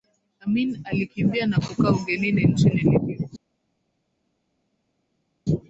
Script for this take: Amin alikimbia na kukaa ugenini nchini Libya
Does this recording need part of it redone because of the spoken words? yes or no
no